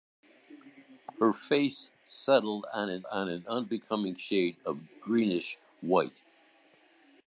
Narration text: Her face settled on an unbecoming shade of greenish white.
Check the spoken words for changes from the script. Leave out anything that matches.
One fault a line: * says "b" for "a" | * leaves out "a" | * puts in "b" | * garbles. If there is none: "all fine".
* puts in "on an"